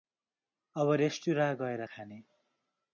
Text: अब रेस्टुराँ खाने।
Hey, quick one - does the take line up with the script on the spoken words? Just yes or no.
no